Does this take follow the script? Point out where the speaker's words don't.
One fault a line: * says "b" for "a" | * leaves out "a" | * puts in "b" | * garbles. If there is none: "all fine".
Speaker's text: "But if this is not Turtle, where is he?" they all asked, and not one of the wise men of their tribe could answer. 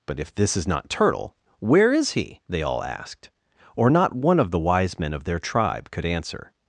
* says "or" for "and"